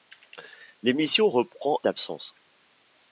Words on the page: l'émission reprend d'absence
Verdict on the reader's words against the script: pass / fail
pass